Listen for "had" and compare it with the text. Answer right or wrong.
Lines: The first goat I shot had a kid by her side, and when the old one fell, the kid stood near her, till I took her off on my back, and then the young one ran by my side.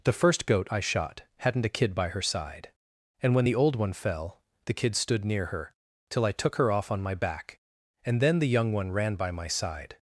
wrong